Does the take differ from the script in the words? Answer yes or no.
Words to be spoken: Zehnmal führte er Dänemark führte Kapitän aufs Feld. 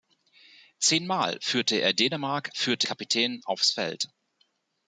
no